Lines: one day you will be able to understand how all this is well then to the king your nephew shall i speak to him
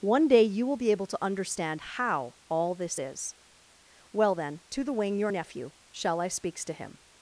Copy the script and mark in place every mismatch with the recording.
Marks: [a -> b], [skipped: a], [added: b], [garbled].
one day you will be able to understand how all this is well then to the [king -> wing] your nephew shall i [speak -> speaks] to him